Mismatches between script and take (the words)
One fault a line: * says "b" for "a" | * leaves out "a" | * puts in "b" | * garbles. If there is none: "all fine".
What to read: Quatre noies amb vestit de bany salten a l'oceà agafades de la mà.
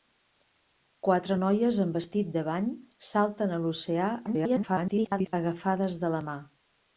* garbles